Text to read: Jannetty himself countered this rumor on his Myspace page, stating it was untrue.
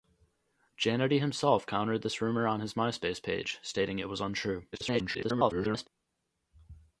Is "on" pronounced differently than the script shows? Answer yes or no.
no